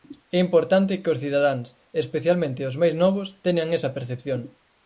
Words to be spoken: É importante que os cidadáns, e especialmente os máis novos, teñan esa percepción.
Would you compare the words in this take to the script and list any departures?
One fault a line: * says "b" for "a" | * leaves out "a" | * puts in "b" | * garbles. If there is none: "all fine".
all fine